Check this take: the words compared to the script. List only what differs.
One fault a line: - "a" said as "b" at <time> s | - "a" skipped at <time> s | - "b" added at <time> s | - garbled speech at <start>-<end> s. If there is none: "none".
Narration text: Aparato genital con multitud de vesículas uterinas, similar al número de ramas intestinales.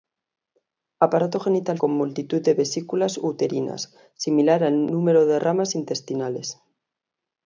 none